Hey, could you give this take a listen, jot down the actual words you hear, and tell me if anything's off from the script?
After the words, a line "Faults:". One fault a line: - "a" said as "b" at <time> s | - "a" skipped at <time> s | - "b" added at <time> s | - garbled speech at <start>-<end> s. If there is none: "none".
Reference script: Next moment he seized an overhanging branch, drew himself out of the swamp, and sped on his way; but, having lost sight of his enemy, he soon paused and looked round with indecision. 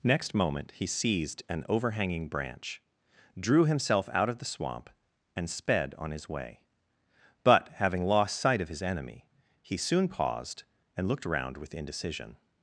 Next moment he seized an overhanging branch, drew himself out of the swamp, and sped on his way; but, having lost sight of his enemy, he soon paused and looked round with indecision.
Faults:
none